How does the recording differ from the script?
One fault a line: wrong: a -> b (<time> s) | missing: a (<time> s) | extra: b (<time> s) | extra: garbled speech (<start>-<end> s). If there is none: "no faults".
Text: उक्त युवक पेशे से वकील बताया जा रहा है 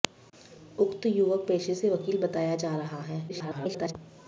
extra: garbled speech (3.3-3.9 s)